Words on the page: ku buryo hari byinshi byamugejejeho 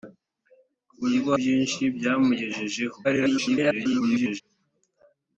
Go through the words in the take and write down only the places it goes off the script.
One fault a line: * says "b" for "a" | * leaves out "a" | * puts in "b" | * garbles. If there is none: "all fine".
* leaves out "hari"
* garbles